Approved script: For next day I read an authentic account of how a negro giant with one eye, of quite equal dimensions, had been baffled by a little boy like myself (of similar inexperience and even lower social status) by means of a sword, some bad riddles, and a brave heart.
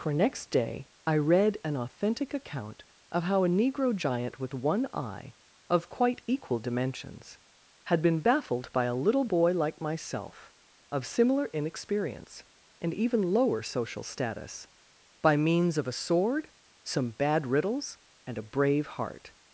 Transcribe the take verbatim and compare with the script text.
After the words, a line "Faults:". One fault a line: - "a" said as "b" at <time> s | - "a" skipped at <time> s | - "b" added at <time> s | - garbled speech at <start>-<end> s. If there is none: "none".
For next day I read an authentic account of how a negro giant with one eye, of quite equal dimensions, had been baffled by a little boy like myself (of similar inexperience and even lower social status) by means of a sword, some bad riddles, and a brave heart.
Faults:
none